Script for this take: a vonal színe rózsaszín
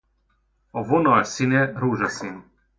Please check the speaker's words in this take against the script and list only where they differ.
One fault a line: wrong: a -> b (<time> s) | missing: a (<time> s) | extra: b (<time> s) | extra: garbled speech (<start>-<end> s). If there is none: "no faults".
no faults